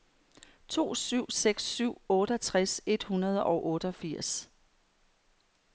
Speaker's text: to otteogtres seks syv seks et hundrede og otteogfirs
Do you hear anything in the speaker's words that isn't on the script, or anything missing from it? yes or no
yes